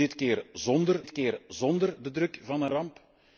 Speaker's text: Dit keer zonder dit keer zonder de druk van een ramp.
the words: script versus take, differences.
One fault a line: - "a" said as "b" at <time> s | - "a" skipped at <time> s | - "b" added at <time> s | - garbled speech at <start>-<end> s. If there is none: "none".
none